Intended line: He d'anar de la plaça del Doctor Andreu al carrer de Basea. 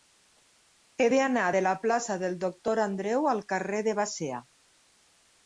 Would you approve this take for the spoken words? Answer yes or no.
yes